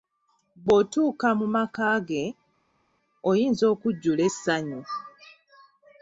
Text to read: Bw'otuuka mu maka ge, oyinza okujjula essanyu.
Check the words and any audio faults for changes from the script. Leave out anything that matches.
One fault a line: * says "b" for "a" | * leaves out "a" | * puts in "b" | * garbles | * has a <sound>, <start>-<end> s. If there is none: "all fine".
all fine